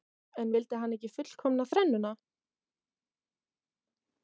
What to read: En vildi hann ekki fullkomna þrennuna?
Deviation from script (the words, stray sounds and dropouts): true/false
false